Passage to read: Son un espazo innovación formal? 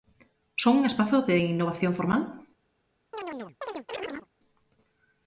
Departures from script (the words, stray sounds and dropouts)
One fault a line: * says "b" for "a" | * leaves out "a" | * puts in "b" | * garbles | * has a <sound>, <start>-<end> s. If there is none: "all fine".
* puts in "de"
* has a chirp, 3.1-4.3 s